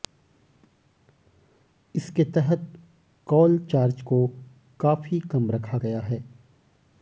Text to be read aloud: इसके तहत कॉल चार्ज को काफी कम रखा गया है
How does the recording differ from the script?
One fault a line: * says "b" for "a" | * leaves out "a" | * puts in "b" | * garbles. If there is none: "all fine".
all fine